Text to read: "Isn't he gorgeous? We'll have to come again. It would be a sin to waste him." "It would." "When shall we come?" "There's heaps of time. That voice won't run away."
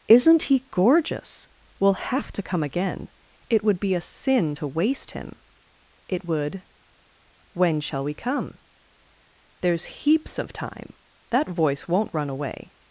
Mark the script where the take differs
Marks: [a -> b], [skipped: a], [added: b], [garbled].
"Isn't he gorgeous? We'll have to come again. It would be a sin to waste him." "It would." "When shall we come?" "There's heaps of time. That voice won't run away."